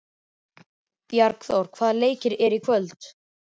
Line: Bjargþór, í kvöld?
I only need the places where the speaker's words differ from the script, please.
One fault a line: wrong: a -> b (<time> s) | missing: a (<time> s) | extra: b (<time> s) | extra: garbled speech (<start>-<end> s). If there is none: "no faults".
extra: hvaða leikir eru (1.8 s)